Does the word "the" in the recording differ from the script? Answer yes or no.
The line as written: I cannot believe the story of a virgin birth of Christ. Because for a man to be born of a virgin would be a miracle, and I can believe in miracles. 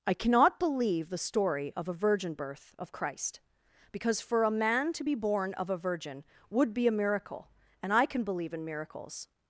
no